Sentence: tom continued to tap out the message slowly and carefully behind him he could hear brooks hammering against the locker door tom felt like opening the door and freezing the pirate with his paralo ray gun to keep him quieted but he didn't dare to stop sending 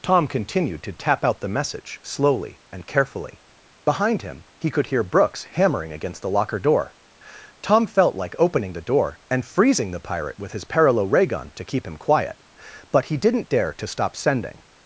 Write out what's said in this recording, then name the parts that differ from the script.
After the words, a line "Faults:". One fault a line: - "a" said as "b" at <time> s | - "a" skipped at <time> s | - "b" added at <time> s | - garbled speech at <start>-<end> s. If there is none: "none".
tom continued to tap out the message slowly and carefully behind him he could hear brooks hammering against the locker door tom felt like opening the door and freezing the pirate with his paralo ray gun to keep him quiet but he didn't dare to stop sending
Faults:
- "quieted" said as "quiet" at 12.0 s